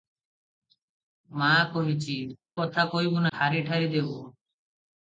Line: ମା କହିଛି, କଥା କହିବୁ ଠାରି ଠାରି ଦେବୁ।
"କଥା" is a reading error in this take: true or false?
false